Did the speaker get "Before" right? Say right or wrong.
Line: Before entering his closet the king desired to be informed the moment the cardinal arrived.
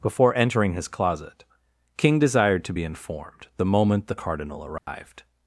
right